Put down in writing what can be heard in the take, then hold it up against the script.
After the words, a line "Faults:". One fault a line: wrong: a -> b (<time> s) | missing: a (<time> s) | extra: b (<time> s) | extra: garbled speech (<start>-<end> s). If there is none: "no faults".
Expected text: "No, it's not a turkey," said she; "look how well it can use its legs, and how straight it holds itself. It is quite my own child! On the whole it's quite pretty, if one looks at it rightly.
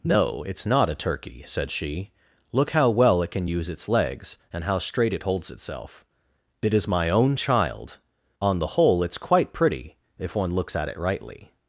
"No, it's not a turkey," said she; "look how well it can use its legs, and how straight it holds itself. It is my own child! On the whole it's quite pretty, if one looks at it rightly.
Faults:
missing: quite (6.9 s)